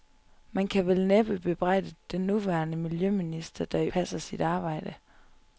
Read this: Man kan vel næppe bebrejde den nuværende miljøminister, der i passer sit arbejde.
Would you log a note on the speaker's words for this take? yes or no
no